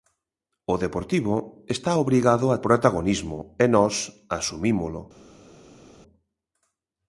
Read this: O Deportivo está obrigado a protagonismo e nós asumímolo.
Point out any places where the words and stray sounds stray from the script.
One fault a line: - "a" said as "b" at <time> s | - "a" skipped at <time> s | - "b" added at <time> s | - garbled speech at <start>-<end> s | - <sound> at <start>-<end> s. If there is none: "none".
none